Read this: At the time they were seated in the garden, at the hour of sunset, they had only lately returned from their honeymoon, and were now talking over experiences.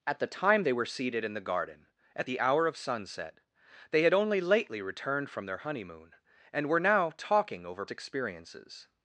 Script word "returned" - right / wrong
right